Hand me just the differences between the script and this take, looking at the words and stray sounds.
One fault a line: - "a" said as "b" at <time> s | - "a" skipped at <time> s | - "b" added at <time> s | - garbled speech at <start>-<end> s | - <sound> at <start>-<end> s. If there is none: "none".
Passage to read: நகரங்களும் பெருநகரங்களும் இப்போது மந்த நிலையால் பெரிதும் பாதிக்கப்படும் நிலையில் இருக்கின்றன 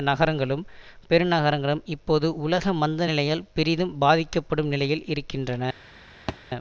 - "உலக" added at 2.4 s
- thud at 6.3-6.4 s